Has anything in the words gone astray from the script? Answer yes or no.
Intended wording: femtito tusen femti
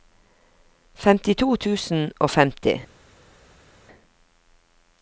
yes